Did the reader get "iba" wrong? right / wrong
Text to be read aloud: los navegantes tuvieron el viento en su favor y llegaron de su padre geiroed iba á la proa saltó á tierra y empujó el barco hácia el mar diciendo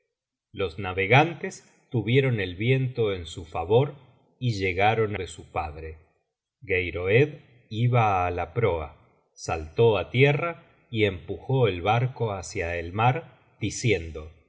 right